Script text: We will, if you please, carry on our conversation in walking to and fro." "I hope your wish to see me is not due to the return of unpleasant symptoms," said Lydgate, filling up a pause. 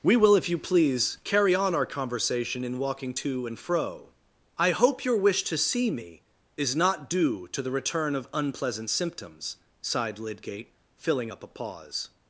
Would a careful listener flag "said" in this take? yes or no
yes